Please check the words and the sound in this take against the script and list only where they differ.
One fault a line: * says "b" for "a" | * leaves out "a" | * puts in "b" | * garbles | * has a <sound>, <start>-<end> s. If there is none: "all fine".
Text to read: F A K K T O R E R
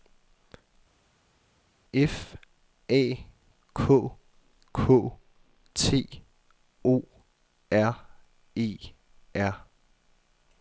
all fine